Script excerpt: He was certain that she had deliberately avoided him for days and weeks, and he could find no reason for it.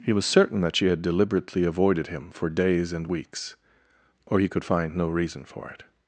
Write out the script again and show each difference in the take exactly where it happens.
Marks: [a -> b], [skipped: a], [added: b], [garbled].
He was certain that she had deliberately avoided him for days and weeks, [and -> or] he could find no reason for it.